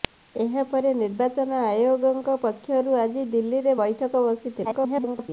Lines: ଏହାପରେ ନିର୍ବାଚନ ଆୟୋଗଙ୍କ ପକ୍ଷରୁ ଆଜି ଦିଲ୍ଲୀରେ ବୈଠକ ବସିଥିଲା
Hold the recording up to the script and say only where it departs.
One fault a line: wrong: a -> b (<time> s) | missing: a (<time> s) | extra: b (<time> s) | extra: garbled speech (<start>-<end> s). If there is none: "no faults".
extra: garbled speech (4.6-5.3 s)